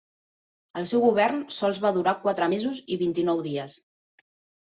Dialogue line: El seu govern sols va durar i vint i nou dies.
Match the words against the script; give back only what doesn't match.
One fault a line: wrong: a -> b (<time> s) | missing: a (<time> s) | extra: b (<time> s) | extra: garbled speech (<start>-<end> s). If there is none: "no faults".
extra: quatre mesos (2.2 s)